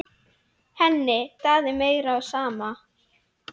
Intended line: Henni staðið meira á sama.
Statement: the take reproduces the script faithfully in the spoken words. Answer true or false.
true